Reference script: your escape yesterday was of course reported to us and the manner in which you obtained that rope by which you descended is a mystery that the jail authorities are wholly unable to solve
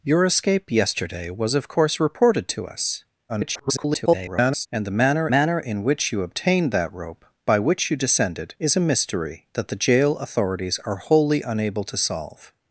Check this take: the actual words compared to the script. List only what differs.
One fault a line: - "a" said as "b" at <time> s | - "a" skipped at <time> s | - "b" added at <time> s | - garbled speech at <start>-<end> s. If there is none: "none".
- garbled speech at 3.3-4.7 s
- "manner" added at 5.3 s